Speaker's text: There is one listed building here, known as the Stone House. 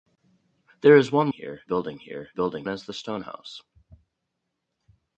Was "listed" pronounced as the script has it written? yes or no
no